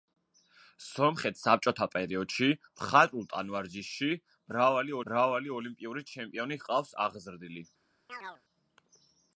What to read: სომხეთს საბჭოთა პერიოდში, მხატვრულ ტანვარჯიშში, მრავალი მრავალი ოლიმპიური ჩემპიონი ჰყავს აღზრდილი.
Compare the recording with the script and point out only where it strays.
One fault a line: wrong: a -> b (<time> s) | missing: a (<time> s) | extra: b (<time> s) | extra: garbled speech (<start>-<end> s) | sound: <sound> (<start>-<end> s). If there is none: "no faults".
sound: chirp (8.1-8.4 s)